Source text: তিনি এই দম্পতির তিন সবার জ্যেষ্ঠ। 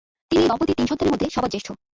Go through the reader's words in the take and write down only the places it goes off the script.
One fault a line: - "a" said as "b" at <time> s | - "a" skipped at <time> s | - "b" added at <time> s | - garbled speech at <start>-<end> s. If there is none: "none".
- "সন্তানের মধ্যে" added at 0.9 s